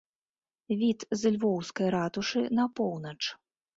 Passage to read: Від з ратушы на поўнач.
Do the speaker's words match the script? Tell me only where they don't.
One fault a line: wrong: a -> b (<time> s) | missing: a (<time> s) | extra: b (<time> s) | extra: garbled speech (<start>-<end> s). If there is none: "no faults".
extra: львоўскай (1.4 s)